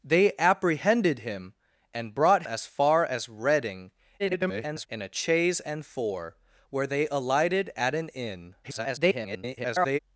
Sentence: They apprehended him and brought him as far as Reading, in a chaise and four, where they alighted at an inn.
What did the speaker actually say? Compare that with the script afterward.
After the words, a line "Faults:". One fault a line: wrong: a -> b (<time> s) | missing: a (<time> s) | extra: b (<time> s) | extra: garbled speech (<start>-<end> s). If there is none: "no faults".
They apprehended him and brought as far as Reading, [garbled] in a chaise and four, where they alighted at an inn. [garbled]
Faults:
missing: him (2.4 s)
extra: garbled speech (4.2-4.9 s)
extra: garbled speech (8.6-10.0 s)